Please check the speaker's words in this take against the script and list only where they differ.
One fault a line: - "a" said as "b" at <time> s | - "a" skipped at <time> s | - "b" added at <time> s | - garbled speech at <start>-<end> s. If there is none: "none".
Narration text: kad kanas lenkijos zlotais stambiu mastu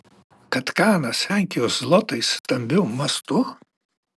none